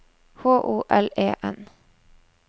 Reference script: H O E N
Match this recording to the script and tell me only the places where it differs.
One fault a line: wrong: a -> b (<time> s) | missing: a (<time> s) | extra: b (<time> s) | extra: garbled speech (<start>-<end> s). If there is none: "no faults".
extra: L (0.9 s)